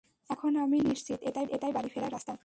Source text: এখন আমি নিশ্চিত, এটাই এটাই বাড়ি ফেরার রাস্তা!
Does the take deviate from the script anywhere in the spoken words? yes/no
no